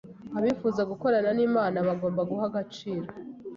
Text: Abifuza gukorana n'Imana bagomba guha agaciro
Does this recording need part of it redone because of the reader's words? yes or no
no